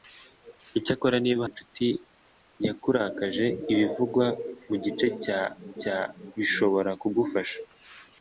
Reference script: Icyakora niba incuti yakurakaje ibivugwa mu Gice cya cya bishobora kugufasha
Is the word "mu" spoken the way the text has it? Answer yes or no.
yes